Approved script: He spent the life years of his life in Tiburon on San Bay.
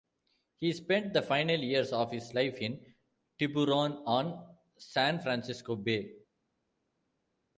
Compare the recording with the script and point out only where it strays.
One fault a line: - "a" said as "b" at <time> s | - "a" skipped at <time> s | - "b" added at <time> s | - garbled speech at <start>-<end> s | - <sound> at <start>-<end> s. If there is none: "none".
- "life" said as "final" at 1.2 s
- "Francisco" added at 5.2 s